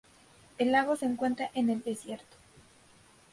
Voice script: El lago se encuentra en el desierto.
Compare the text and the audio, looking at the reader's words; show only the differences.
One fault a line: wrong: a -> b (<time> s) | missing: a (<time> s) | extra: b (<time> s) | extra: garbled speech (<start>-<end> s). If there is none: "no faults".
no faults